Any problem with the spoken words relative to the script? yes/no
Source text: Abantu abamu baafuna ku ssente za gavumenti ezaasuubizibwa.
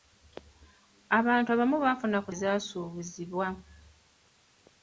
yes